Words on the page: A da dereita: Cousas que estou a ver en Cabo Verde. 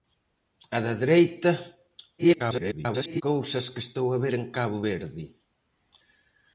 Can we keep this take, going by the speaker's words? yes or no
no